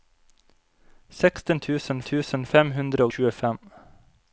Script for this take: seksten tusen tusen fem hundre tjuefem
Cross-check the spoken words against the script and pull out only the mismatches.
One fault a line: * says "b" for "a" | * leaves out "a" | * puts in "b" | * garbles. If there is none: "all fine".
all fine